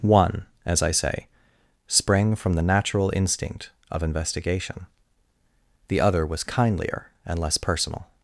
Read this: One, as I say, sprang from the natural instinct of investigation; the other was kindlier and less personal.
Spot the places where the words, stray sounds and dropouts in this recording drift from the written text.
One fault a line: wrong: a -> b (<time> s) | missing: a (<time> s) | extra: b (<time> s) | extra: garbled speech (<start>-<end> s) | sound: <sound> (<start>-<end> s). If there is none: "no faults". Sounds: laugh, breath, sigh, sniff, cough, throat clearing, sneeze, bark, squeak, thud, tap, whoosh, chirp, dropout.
no faults